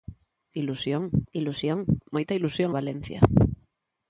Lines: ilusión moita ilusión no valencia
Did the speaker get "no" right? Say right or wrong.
wrong